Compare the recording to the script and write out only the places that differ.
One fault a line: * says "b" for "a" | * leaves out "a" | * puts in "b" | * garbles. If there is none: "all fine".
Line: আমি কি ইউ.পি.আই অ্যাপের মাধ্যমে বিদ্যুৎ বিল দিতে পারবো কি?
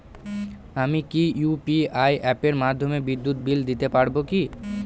all fine